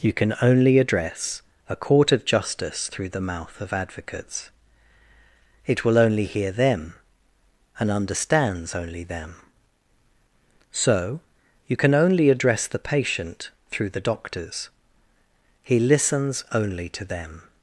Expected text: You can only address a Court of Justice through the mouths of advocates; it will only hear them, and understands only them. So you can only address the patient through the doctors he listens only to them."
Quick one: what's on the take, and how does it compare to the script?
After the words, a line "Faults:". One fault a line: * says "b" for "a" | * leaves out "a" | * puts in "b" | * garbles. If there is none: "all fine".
You can only address a Court of Justice through the mouth of advocates; it will only hear them, and understands only them. So you can only address the patient through the doctors he listens only to them."
Faults:
* says "mouth" for "mouths"